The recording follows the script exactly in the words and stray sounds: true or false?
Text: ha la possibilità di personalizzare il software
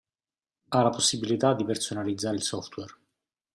true